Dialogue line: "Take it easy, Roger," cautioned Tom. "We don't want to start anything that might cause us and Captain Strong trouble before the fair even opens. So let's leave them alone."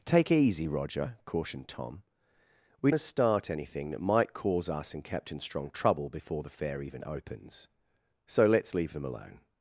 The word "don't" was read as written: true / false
false